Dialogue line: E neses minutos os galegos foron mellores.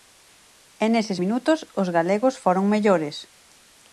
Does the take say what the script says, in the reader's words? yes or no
yes